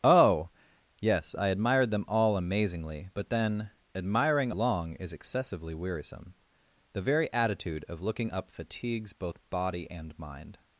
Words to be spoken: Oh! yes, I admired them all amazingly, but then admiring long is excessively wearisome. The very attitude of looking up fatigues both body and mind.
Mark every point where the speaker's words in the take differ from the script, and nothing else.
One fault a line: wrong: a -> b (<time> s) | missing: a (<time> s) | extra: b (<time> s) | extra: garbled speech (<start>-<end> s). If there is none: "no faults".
no faults